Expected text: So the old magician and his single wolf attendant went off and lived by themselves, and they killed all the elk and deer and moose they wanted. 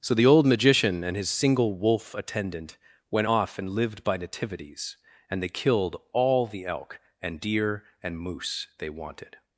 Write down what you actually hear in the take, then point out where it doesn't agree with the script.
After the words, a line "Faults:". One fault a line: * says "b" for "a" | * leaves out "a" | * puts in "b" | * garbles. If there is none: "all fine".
So the old magician and his single wolf attendant went off and lived by nativities, and they killed all the elk and deer and moose they wanted.
Faults:
* says "nativities" for "themselves"